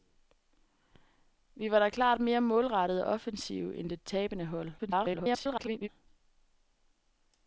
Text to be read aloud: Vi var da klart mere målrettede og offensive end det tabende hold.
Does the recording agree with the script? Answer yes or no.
no